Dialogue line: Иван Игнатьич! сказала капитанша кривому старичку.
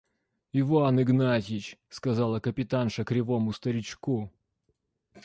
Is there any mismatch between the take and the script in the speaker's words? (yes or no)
no